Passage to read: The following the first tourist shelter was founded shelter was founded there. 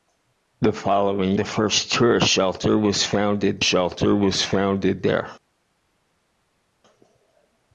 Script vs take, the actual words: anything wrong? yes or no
no